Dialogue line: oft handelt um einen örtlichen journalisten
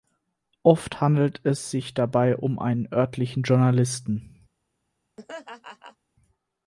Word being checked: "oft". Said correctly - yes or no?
yes